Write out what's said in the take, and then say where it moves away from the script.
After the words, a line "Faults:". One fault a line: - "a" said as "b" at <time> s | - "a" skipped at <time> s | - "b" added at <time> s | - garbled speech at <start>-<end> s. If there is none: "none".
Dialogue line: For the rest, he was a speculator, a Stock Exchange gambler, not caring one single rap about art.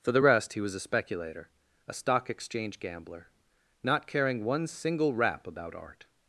For the rest, he was a speculator, a Stock Exchange gambler, not caring one single rap about art.
Faults:
none